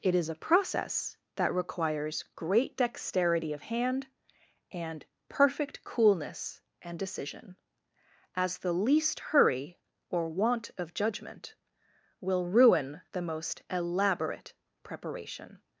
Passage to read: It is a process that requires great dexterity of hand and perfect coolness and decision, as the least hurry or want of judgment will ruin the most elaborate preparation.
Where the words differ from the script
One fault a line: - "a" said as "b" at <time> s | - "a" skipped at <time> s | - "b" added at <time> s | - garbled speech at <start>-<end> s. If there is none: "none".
none